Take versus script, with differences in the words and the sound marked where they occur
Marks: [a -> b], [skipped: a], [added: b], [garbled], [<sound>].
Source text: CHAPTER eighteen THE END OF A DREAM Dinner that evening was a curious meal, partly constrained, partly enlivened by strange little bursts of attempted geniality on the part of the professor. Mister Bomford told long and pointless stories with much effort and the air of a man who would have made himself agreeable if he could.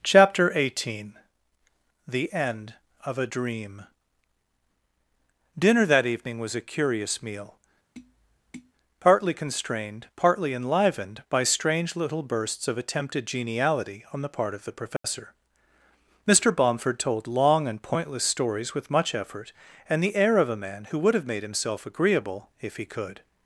CHAPTER eighteen THE END OF A DREAM Dinner that evening was a curious meal, [tap] partly constrained, partly enlivened by strange little bursts of attempted geniality on the part of the professor. [dropout] Mister Bomford told long and pointless stories with much effort and the air of a man who would have made himself agreeable if he could.